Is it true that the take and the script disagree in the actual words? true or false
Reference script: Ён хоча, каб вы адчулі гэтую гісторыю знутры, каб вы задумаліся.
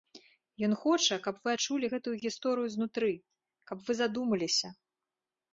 false